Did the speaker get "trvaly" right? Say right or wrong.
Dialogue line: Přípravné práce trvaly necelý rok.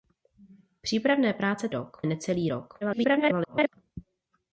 wrong